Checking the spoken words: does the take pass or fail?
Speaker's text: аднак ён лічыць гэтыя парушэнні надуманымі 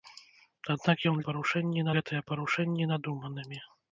fail